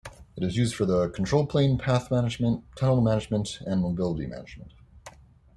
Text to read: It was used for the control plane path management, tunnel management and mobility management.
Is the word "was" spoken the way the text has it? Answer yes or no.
no